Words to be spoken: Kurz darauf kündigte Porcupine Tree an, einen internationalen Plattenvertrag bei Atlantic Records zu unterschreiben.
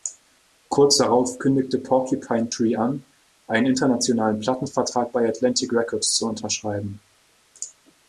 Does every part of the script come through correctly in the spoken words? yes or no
yes